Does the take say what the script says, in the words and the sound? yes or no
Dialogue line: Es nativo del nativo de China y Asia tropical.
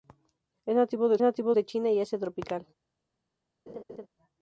no